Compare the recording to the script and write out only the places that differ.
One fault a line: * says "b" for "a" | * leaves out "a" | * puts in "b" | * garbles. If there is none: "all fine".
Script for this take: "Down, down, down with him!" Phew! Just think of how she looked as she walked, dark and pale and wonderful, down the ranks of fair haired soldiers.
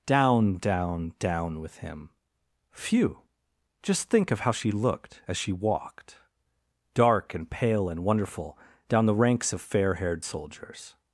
all fine